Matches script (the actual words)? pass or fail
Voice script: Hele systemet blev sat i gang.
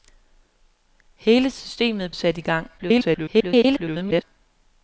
fail